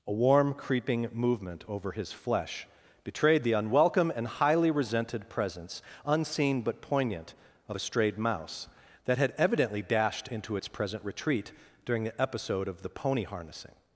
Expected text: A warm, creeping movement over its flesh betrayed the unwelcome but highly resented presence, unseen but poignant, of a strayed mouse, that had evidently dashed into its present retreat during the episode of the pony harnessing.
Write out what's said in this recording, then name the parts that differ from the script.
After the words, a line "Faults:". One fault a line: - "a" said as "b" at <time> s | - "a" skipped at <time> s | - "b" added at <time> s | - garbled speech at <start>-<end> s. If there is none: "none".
A warm, creeping movement over his flesh betrayed the unwelcome and highly resented presence, unseen but poignant, of a strayed mouse, that had evidently dashed into its present retreat during the episode of the pony harnessing.
Faults:
- "its" said as "his" at 1.9 s
- "but" said as "and" at 4.2 s